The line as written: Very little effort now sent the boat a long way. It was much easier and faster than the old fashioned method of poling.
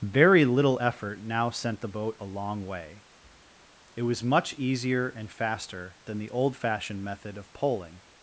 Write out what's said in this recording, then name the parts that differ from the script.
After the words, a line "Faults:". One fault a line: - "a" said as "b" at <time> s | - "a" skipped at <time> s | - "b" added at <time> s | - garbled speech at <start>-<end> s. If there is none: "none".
Very little effort now sent the boat a long way. It was much easier and faster than the old fashioned method of poling.
Faults:
none